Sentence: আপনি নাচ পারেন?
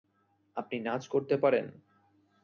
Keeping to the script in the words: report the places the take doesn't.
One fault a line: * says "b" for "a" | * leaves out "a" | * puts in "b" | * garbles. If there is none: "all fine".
* puts in "করতে"